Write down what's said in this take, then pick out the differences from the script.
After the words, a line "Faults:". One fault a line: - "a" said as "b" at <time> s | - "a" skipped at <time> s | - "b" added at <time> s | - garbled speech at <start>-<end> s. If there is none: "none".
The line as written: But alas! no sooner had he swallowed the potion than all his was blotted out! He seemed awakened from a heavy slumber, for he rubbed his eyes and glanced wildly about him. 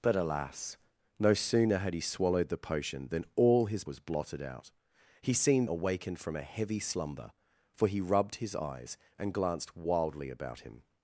But alas! no sooner had he swallowed the potion than all his was blotted out! He seemed awakened from a heavy slumber, for he rubbed his eyes and glanced wildly about him.
Faults:
none